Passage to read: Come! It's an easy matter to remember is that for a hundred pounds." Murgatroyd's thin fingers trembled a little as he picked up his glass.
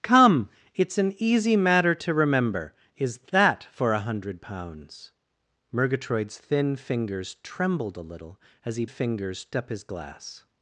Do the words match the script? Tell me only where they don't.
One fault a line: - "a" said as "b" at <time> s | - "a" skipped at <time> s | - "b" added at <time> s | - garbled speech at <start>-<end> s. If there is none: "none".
- "picked" said as "fingers" at 8.9 s